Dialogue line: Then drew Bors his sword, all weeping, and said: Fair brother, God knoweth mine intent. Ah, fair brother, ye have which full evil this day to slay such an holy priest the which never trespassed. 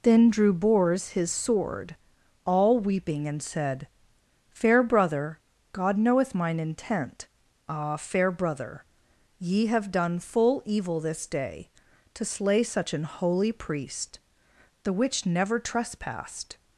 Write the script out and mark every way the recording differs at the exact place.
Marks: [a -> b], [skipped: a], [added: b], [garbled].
Then drew Bors his sword, all weeping, and said: Fair brother, God knoweth mine intent. Ah, fair brother, ye have [which -> done] full evil this day to slay such an holy priest the which never trespassed.